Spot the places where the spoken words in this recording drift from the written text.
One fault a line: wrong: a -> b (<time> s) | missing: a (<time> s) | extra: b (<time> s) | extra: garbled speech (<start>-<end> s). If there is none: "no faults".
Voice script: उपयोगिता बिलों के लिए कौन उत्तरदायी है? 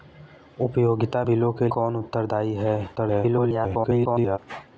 missing: लिए (1.7 s)
extra: garbled speech (3.0-4.4 s)